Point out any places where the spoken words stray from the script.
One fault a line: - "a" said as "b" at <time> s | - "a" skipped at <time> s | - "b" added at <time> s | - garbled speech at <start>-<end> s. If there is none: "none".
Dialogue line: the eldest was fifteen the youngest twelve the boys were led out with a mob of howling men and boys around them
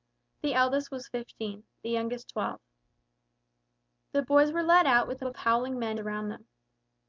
- "mob" skipped at 5.3 s
- "and boys" skipped at 6.0 s